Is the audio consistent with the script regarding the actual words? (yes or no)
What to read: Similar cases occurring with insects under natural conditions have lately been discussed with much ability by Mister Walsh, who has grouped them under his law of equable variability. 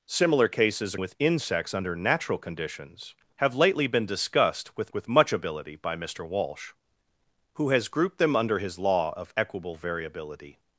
no